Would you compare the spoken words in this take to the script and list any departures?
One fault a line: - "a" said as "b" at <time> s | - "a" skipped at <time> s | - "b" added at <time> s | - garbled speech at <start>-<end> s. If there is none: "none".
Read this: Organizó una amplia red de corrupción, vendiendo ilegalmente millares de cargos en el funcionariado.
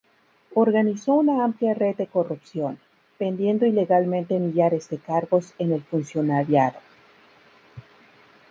none